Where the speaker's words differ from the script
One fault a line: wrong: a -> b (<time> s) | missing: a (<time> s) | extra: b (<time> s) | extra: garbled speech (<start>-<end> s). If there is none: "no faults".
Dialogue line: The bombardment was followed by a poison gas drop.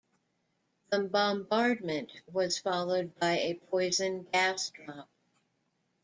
no faults